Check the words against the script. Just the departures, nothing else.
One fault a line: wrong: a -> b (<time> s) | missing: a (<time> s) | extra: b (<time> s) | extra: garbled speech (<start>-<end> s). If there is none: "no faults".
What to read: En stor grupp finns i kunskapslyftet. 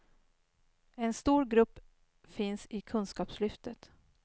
no faults